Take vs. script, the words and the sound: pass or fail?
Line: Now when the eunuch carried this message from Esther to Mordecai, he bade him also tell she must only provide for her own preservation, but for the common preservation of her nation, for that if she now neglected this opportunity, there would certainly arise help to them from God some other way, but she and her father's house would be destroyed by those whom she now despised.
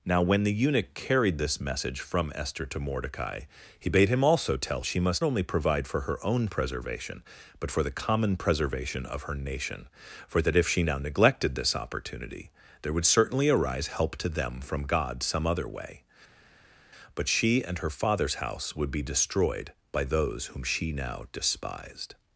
pass